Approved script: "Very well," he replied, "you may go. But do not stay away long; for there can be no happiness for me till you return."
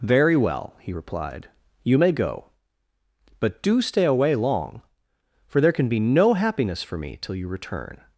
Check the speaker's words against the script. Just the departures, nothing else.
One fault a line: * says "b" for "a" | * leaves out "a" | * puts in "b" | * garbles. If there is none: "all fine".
* leaves out "not"